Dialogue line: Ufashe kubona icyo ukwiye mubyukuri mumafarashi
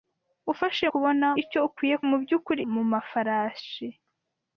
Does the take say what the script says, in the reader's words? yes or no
yes